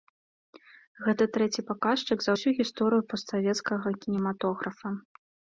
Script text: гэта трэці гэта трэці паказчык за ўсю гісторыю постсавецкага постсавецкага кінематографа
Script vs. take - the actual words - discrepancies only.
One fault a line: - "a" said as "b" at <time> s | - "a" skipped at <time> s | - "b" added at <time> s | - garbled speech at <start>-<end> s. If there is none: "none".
- "гэта трэці" skipped at 1.6 s
- "постсавецкага" skipped at 4.0 s